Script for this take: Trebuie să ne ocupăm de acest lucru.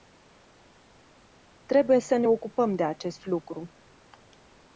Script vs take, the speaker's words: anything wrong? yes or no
no